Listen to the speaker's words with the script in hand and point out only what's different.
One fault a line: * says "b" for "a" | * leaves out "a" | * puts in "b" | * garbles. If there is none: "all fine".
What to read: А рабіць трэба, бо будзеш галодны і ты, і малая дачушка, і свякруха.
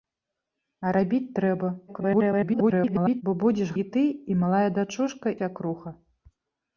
* garbles
* leaves out "галодны"
* leaves out "і"